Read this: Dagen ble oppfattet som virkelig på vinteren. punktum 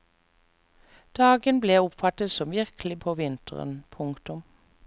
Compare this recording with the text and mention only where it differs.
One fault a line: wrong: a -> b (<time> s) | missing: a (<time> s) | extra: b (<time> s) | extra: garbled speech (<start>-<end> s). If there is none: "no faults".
no faults